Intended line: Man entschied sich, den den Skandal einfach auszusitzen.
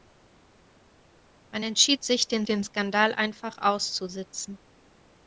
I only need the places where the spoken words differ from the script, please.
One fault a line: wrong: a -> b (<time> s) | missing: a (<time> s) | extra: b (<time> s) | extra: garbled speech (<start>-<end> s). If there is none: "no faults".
no faults